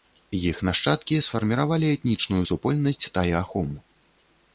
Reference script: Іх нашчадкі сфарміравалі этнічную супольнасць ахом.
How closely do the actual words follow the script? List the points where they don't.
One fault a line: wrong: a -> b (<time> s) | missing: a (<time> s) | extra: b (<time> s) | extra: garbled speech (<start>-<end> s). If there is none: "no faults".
extra: тай (3.2 s)